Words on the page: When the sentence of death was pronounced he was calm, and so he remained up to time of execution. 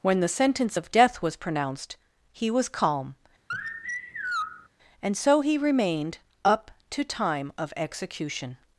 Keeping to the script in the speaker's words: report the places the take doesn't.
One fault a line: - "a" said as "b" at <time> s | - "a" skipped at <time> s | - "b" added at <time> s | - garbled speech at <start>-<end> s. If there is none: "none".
none